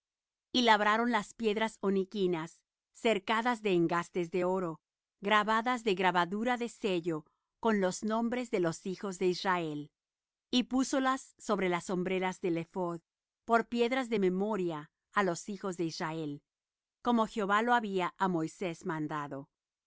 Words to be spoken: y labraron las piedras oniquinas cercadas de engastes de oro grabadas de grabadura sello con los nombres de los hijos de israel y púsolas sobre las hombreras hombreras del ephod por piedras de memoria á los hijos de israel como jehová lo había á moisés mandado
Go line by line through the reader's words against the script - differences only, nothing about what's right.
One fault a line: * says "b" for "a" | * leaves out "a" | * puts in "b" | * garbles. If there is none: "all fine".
* puts in "de"
* leaves out "hombreras"